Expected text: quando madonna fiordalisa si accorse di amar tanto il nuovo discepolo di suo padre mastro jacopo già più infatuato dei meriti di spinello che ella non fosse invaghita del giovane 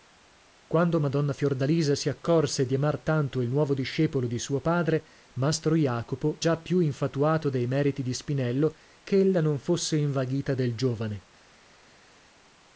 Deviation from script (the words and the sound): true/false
false